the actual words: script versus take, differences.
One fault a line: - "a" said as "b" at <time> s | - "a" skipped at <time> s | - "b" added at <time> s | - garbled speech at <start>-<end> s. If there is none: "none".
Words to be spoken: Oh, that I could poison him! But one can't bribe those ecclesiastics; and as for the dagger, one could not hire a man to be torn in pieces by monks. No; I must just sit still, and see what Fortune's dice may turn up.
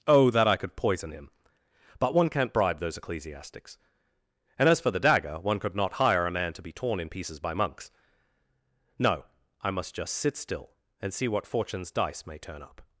none